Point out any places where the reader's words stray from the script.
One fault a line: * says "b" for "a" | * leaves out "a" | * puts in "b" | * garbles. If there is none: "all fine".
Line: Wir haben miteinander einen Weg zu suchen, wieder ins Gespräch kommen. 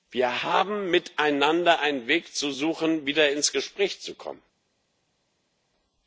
* puts in "zu"